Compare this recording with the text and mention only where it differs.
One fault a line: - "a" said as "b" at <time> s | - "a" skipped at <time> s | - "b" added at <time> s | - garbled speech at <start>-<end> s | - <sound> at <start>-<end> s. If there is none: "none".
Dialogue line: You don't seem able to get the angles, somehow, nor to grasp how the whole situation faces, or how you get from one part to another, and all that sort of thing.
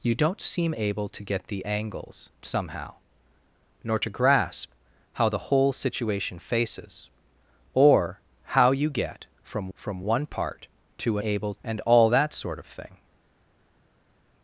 - "from" added at 9.7 s
- "another" said as "able" at 11.2 s